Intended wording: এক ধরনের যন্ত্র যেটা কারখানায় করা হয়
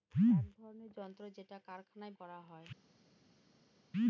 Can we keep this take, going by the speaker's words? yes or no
yes